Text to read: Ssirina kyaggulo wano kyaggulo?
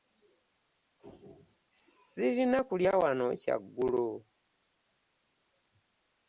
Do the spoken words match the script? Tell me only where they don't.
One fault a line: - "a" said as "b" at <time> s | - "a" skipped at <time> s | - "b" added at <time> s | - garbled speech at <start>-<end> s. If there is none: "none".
- "kyaggulo" said as "kulya" at 2.7 s